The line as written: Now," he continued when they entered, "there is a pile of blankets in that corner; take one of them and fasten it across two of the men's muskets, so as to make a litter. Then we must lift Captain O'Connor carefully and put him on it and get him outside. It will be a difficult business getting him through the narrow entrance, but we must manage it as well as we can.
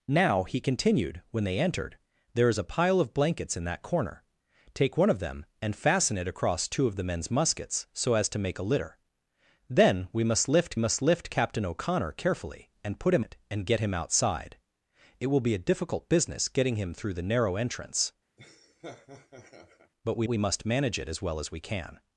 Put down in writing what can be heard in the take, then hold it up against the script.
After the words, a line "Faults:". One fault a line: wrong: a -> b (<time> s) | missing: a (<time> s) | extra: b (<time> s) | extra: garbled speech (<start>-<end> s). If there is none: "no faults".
Now," he continued when they entered, "there is a pile of blankets in that corner; take one of them and fasten it across two of the men's muskets, so as to make a litter. Then we must lift must lift Captain O'Connor carefully and put him it and get him outside. It will be a difficult business getting him through the narrow entrance, but we we must manage it as well as we can.
Faults:
extra: must lift (10.8 s)
missing: on (13.3 s)
extra: we (20.3 s)